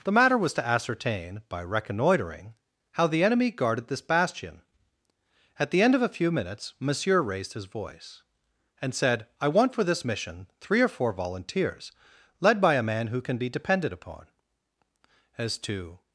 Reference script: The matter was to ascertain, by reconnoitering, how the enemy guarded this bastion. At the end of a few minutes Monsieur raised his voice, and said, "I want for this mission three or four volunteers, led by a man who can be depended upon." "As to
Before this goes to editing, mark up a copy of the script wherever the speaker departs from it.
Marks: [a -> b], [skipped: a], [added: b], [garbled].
The matter was to ascertain, by reconnoitering, how the enemy guarded this bastion. At the end of a few minutes Monsieur raised his voice, and said, "I want for this mission three or four volunteers, led by a man who can be depended upon." "As to